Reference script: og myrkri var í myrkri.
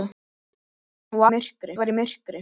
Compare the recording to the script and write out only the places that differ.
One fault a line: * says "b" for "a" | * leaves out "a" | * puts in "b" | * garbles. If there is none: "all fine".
all fine